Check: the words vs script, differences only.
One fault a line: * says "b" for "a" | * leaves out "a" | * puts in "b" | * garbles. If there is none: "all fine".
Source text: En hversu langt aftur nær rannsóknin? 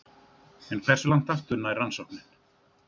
all fine